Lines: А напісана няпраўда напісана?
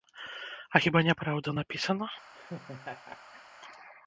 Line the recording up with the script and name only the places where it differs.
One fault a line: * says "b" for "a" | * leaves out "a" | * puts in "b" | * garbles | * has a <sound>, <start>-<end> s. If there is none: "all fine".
* says "хіба" for "напісана"
* has a laugh, 2.3-3.4 s